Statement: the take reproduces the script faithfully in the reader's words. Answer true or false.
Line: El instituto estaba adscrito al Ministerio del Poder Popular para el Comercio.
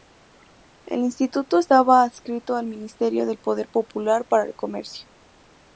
true